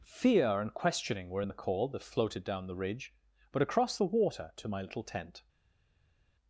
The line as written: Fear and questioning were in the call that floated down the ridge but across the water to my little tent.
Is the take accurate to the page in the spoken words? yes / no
yes